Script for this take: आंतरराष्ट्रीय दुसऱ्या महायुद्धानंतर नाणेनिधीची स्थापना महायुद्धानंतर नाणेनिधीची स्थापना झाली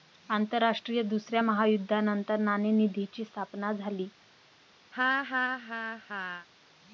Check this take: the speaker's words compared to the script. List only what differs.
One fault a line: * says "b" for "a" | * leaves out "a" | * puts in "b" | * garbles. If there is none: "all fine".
* leaves out "महायुद्धानंतर नाणेनिधीची स्थापना"